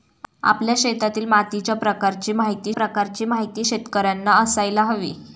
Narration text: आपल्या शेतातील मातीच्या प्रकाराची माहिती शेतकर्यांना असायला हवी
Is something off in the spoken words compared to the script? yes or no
yes